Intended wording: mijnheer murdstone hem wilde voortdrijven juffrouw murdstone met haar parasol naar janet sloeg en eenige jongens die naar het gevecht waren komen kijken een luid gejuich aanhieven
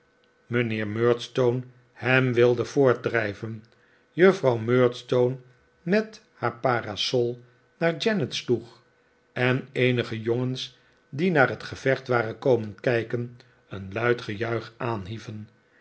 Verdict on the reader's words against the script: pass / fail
pass